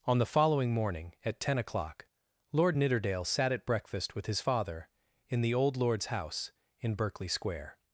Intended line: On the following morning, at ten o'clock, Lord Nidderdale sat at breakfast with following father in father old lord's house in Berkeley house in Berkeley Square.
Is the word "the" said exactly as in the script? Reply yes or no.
yes